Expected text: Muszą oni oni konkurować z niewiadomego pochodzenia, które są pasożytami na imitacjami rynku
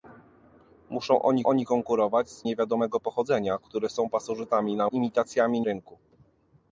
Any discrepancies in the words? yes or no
no